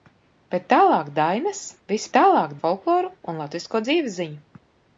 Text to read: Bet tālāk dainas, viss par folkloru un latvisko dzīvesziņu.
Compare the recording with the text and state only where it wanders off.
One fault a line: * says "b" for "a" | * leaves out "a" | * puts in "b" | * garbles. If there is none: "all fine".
* says "tālāk" for "par"